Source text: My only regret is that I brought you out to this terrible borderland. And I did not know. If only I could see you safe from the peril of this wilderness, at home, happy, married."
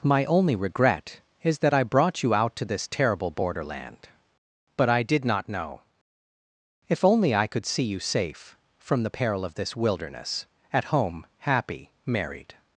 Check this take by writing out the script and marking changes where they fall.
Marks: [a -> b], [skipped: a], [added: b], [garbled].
My only regret is that I brought you out to this terrible borderland. [And -> But] I did not know. If only I could see you safe from the peril of this wilderness, at home, happy, married."